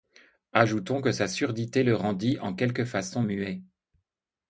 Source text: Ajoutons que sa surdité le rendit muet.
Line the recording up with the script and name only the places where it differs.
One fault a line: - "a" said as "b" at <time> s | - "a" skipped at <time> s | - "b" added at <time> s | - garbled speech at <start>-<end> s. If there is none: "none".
- "en quelque façon" added at 2.4 s